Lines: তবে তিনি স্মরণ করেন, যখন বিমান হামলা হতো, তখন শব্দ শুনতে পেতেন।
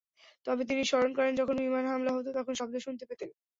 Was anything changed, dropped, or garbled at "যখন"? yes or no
no